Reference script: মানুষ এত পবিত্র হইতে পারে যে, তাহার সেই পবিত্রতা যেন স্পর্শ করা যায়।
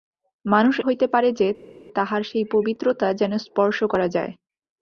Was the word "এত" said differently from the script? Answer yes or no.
yes